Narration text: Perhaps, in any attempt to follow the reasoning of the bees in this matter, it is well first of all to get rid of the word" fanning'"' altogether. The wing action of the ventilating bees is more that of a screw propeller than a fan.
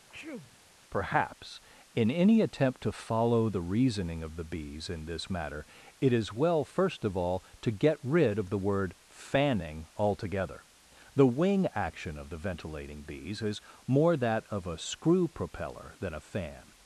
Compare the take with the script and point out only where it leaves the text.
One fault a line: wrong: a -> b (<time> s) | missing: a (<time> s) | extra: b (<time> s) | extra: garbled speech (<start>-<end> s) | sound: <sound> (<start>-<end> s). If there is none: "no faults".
sound: sneeze (0.1-0.6 s)